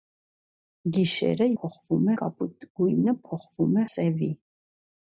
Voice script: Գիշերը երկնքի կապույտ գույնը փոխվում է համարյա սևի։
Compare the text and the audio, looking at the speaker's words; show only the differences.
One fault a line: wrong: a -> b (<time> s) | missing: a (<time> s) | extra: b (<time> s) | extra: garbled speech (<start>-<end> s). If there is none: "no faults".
wrong: երկնքի -> փոխվում (1.6 s)
missing: համարյա (3.9 s)